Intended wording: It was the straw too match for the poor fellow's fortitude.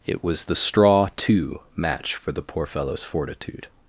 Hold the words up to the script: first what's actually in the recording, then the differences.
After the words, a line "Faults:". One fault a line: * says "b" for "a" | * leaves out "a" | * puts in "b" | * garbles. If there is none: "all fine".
It was the straw too match for the poor fellow's fortitude.
Faults:
all fine